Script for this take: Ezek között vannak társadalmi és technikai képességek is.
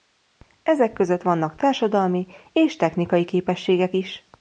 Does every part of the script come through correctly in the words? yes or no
yes